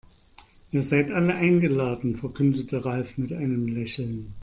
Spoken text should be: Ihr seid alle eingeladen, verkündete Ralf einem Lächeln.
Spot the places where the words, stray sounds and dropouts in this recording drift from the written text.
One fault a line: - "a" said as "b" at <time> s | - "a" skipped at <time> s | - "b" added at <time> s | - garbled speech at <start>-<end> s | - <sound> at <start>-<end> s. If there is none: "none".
- "mit" added at 3.2 s